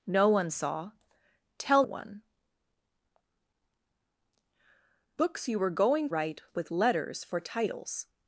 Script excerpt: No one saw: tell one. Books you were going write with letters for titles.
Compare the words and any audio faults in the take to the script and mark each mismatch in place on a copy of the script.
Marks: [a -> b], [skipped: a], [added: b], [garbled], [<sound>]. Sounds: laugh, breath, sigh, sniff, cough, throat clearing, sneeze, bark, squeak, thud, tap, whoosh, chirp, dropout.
No one saw: tell one. Books you were going write with letters for titles.